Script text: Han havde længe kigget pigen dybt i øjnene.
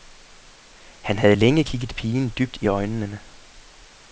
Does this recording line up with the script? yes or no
yes